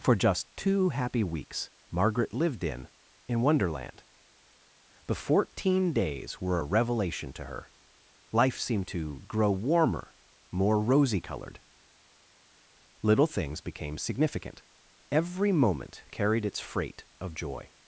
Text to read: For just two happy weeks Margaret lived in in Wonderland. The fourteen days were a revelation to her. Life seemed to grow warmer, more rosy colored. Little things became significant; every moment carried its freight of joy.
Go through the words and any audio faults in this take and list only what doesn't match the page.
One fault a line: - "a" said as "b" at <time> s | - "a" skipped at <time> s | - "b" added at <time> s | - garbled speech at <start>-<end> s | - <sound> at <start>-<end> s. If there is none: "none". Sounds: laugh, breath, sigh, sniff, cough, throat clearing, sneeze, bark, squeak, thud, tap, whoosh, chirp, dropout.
none